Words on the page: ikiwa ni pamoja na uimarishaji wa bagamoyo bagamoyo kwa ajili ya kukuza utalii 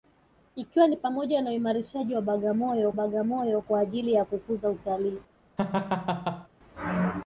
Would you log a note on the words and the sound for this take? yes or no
yes